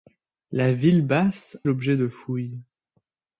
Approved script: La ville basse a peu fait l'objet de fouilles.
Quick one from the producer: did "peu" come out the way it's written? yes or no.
no